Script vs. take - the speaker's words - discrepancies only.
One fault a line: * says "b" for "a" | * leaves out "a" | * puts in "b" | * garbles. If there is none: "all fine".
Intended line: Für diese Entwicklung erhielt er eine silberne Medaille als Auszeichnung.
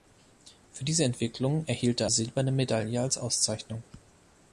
* leaves out "eine"